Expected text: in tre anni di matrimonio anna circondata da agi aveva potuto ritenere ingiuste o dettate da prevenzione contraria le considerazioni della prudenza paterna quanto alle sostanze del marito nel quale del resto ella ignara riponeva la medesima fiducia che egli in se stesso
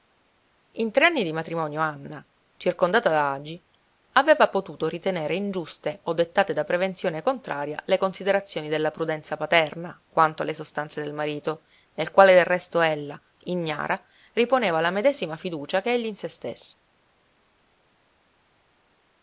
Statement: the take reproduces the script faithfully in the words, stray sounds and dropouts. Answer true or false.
true